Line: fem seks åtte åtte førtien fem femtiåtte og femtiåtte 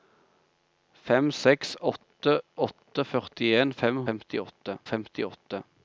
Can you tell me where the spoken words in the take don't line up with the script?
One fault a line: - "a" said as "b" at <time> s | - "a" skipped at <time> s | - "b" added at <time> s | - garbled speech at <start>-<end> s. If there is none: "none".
none